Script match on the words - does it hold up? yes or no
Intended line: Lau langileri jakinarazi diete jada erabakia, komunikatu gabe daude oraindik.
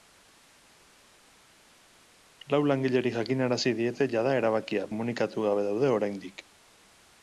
yes